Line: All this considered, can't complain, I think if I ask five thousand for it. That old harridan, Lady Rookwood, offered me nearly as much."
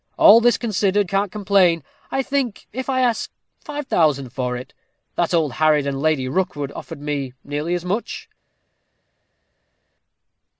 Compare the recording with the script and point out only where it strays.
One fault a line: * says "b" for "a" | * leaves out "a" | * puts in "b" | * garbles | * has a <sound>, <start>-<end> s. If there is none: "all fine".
all fine